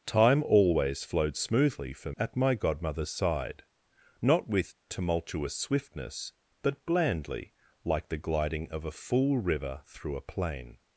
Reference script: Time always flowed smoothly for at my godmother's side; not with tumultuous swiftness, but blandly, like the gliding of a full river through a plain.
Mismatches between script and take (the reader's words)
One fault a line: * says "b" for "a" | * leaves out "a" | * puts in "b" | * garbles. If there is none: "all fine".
all fine